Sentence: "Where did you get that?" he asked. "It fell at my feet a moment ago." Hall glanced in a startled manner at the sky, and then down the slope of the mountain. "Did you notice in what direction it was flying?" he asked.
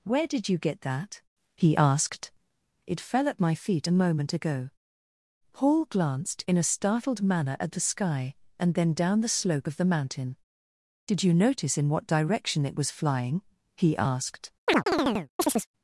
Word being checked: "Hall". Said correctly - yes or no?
no